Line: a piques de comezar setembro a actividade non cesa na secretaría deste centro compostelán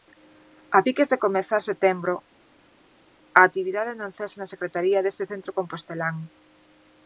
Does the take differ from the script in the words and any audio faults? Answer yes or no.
no